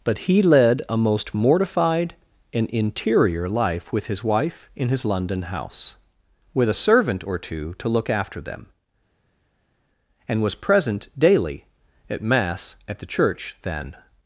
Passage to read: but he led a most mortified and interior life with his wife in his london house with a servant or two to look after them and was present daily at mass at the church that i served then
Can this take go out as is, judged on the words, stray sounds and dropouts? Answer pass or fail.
fail